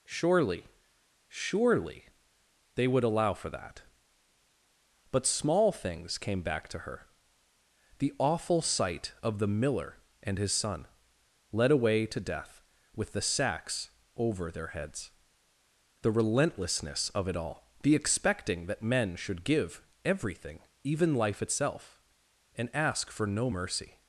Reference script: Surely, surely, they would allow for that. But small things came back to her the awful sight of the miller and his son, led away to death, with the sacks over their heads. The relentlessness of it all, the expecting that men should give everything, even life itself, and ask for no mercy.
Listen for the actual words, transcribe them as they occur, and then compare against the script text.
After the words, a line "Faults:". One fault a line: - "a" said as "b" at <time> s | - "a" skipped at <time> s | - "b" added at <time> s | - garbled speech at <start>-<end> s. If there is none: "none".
Surely, surely, they would allow for that. But small things came back to her the awful sight of the miller and his son, led away to death, with the sacks over their heads. The relentlessness of it all, the expecting that men should give everything, even life itself, and ask for no mercy.
Faults:
none